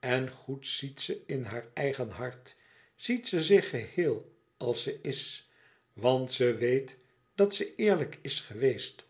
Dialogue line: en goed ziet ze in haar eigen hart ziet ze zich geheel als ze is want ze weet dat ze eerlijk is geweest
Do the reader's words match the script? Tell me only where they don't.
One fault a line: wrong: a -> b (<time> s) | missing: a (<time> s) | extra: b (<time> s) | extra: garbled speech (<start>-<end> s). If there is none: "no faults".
no faults